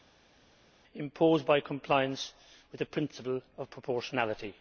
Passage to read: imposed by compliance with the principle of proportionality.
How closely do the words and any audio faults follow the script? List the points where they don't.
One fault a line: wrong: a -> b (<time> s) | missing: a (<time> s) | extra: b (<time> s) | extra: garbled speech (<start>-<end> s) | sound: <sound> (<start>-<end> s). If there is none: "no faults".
no faults